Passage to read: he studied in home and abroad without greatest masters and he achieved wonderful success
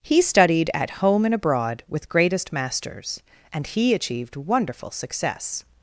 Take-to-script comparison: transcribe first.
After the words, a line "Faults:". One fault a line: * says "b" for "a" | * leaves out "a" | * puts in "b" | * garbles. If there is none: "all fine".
he studied at home and abroad with greatest masters and he achieved wonderful success
Faults:
* says "at" for "in"
* says "with" for "without"